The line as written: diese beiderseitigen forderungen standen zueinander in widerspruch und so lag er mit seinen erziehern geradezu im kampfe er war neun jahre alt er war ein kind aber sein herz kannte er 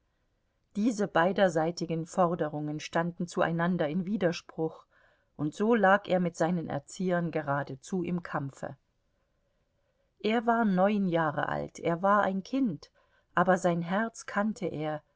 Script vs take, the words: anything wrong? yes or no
no